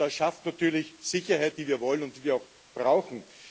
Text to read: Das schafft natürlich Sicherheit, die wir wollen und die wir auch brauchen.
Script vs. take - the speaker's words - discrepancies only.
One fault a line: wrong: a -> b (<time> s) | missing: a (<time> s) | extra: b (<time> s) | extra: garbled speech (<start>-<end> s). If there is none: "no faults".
no faults